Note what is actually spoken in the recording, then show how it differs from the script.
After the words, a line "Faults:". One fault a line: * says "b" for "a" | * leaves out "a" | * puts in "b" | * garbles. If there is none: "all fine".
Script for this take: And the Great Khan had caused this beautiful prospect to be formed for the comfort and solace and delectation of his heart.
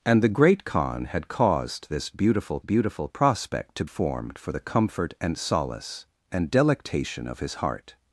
And the Great Khan had caused this beautiful beautiful prospect to formed for the comfort and solace and delectation of his heart.
Faults:
* puts in "beautiful"
* leaves out "be"